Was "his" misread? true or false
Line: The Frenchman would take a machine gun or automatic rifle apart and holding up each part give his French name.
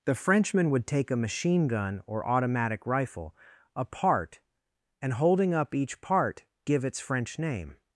true